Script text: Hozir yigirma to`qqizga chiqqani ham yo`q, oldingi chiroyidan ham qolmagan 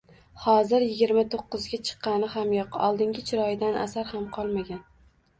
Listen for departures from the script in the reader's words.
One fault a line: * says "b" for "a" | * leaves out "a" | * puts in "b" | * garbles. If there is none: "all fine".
* puts in "asar"